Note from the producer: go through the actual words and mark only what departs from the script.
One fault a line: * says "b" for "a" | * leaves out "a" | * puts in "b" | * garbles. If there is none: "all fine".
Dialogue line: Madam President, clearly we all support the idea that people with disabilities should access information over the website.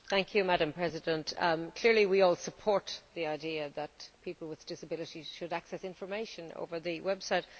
all fine